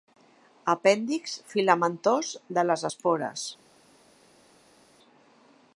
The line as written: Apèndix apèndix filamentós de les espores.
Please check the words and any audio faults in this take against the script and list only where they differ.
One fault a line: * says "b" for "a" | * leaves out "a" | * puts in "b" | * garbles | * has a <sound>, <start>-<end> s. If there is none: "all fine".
* leaves out "apèndix"